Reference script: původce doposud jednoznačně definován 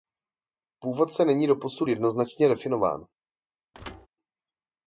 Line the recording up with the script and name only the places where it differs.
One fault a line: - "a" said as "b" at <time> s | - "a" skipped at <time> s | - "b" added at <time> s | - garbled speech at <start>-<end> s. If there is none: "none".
- "není" added at 1.2 s